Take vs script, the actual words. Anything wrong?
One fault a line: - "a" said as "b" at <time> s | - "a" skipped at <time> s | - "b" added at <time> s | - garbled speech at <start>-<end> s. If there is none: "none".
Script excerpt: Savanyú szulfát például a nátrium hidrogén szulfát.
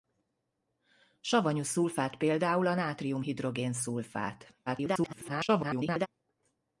- garbled speech at 4.7-6.1 s